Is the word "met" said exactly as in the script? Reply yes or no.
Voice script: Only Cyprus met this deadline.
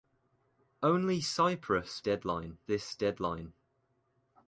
no